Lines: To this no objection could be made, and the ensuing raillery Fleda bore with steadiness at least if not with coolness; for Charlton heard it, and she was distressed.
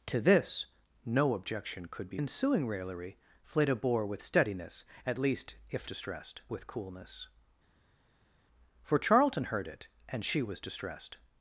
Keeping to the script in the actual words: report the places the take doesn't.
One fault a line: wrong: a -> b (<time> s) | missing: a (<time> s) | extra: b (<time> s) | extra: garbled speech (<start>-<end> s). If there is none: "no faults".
missing: made and the (2.2 s)
wrong: not -> distressed (5.8 s)